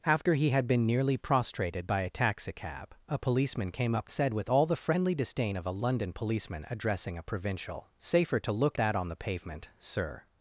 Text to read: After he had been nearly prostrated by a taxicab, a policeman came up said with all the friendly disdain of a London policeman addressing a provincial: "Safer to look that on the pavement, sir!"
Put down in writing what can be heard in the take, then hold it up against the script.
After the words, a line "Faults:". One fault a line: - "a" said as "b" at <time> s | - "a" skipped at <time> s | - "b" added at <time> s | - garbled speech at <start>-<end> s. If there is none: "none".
After he had been nearly prostrated by a taxicab, a policeman came up said with all the friendly disdain of a London policeman addressing a provincial: "Safer to look that on the pavement, sir!"
Faults:
none